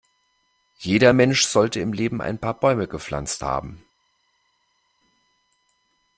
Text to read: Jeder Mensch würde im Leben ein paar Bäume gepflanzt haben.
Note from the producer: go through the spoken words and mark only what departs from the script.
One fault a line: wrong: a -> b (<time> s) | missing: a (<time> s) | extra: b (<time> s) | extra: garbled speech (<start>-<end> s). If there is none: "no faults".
wrong: würde -> sollte (1.4 s)